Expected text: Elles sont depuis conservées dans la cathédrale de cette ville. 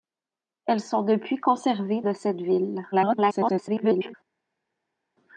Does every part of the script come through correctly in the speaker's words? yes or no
no